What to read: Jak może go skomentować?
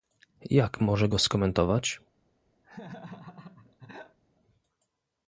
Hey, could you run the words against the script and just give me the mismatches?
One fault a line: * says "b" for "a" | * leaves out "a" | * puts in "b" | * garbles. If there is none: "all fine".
all fine